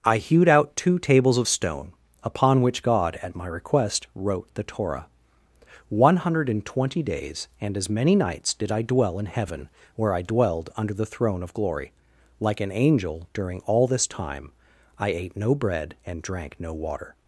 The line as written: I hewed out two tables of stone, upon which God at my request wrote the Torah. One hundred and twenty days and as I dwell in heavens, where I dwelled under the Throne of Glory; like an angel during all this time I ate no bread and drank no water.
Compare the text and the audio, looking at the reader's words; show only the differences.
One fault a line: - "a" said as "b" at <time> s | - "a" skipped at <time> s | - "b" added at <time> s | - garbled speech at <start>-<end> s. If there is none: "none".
- "many nights did" added at 7.9 s
- "heavens" said as "heaven" at 9.2 s